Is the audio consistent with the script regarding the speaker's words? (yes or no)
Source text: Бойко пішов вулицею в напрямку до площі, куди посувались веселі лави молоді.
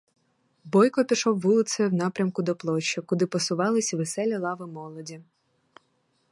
yes